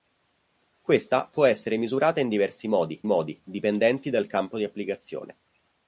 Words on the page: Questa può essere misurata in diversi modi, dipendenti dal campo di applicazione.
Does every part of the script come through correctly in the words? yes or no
no